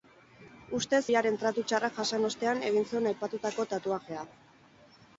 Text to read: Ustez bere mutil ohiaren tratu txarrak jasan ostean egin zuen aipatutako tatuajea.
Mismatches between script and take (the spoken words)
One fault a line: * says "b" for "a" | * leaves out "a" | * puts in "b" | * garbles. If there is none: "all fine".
* leaves out "bere mutil"